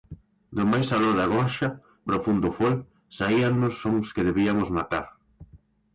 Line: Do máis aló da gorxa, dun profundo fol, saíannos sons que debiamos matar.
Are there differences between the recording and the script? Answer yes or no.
yes